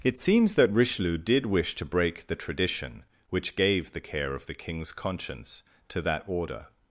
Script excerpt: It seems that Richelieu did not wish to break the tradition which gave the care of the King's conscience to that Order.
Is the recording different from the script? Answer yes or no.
yes